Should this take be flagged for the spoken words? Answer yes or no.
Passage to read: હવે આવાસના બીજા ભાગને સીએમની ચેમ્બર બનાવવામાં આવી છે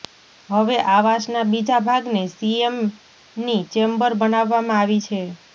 no